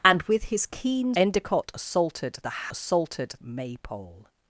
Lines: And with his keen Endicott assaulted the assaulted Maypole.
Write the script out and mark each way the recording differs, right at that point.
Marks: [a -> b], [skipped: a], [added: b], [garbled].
And with his keen Endicott assaulted the assaulted Maypole.